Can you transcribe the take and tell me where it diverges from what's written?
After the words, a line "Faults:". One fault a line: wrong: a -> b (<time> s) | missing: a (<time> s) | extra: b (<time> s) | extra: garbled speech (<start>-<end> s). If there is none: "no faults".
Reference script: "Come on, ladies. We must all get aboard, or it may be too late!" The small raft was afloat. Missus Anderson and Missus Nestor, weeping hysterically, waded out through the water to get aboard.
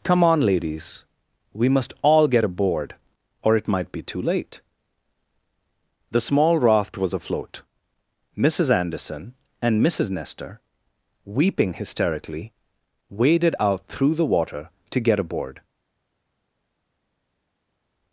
"Come on, ladies. We must all get aboard, or it might be too late!" The small raft was afloat. Missus Anderson and Missus Nestor, weeping hysterically, waded out through the water to get aboard.
Faults:
wrong: may -> might (3.7 s)